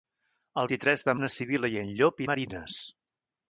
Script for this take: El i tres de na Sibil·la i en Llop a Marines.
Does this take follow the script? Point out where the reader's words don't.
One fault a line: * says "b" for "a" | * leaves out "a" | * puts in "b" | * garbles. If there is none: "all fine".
all fine